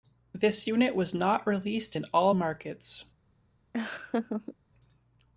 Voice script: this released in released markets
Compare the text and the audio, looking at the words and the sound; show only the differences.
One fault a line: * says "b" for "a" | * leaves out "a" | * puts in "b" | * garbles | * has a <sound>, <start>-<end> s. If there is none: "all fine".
* puts in "unit was not"
* says "all" for "released"
* has a laugh, 3.7-4.6 s